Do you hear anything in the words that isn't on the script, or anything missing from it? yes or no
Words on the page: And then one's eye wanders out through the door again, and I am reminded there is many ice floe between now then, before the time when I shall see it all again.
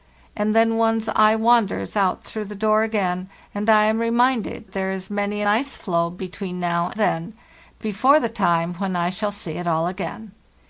no